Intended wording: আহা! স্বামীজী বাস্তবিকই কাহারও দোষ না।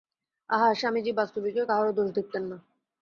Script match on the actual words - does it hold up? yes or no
no